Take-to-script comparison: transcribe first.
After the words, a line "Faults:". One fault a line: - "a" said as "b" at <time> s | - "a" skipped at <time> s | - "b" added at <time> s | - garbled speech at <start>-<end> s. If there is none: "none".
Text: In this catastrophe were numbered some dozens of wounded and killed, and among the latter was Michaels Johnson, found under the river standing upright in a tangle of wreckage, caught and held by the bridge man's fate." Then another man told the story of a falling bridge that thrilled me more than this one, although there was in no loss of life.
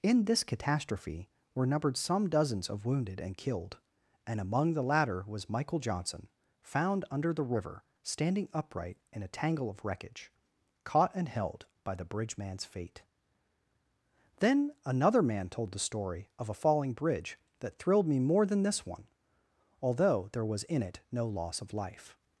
In this catastrophe were numbered some dozens of wounded and killed, and among the latter was Michael Johnson, found under the river standing upright in a tangle of wreckage, caught and held by the bridge man's fate." Then another man told the story of a falling bridge that thrilled me more than this one, although there was in it no loss of life.
Faults:
- "Michaels" said as "Michael" at 5.5 s
- "it" added at 20.8 s